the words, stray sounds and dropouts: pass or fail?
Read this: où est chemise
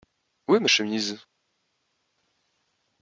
fail